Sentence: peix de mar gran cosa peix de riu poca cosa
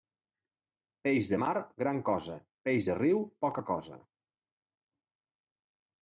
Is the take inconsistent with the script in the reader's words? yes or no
no